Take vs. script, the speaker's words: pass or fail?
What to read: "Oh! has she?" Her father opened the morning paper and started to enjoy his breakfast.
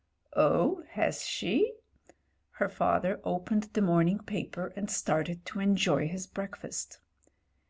pass